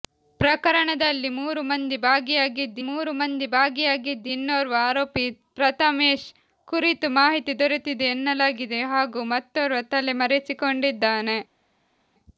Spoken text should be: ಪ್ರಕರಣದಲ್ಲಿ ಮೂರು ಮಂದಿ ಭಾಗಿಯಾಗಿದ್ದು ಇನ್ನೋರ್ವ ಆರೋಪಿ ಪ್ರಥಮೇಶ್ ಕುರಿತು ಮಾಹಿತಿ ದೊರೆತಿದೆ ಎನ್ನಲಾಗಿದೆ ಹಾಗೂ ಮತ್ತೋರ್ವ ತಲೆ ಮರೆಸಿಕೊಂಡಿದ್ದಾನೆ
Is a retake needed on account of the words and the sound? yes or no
yes